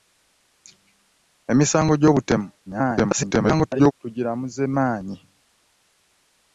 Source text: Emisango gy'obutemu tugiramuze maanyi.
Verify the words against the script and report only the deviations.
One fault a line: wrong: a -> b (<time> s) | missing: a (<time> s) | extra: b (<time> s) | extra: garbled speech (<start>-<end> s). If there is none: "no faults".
extra: garbled speech (2.7-3.9 s)